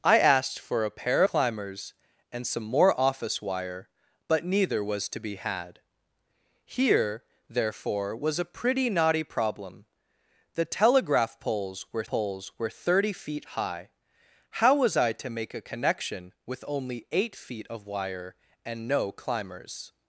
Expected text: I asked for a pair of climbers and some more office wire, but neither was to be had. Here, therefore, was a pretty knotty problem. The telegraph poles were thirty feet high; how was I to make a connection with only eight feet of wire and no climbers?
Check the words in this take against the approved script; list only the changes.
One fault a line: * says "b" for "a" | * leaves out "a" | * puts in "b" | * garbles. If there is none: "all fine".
* leaves out "of"
* puts in "poles were"